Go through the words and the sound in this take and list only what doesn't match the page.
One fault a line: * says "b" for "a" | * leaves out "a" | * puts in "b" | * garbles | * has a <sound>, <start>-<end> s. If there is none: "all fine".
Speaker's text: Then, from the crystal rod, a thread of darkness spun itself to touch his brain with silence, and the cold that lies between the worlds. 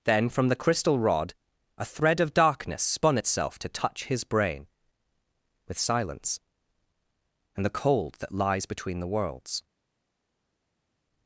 all fine